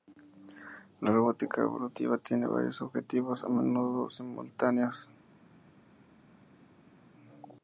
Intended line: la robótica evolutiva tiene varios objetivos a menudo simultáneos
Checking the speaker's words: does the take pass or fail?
pass